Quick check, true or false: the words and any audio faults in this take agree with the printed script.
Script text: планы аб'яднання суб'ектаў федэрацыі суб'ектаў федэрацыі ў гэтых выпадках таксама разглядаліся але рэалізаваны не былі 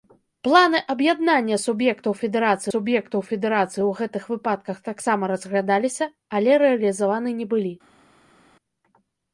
true